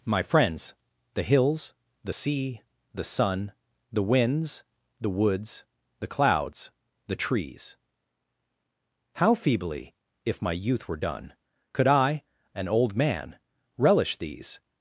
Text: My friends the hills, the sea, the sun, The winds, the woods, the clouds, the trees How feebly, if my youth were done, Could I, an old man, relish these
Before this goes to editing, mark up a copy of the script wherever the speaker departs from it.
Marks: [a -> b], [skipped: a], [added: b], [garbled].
My friends the hills, the sea, the sun, The winds, the woods, the clouds, the trees How feebly, if my youth were done, Could I, an old man, relish these